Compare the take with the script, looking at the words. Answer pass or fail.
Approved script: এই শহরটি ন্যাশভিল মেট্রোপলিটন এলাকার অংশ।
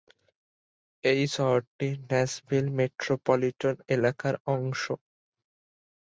pass